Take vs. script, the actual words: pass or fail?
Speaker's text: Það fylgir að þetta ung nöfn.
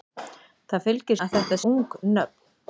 pass